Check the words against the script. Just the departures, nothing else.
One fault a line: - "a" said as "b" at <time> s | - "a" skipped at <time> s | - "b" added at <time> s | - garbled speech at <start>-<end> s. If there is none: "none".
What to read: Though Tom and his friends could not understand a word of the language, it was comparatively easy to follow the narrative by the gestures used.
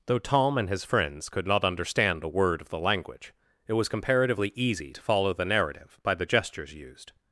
none